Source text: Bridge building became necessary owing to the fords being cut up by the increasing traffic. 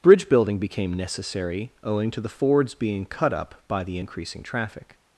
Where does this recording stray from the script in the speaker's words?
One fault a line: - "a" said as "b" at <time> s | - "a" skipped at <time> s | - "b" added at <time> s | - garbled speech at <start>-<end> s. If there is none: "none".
none